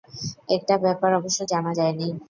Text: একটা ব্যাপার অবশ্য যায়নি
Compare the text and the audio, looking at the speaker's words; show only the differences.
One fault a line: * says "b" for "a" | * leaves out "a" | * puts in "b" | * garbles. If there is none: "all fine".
* puts in "জানা"